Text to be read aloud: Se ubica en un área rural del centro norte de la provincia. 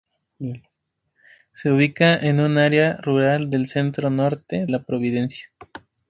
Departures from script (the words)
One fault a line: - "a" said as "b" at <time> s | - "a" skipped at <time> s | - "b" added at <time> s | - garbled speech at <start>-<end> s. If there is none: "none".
- "de" skipped at 4.7 s